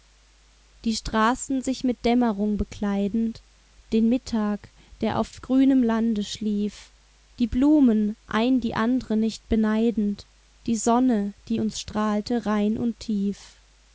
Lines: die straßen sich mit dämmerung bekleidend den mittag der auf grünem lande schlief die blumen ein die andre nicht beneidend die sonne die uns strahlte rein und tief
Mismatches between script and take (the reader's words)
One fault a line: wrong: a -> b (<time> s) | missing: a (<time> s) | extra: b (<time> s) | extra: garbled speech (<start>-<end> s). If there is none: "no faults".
no faults